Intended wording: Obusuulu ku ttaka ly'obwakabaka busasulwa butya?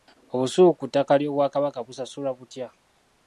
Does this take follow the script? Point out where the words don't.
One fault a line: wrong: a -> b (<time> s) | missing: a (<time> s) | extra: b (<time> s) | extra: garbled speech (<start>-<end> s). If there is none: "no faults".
no faults